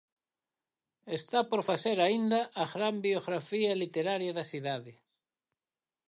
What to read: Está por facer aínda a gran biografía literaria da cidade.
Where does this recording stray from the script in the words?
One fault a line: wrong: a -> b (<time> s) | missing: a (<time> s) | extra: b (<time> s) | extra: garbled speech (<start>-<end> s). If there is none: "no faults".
no faults